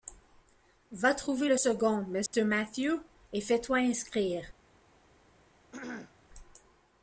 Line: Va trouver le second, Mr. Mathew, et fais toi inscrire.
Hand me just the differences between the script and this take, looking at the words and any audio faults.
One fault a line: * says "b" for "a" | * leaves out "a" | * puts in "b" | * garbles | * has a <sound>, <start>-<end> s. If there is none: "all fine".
* has a dropout, 2.3-2.3 s
* has a throat clearing, 5.7-6.2 s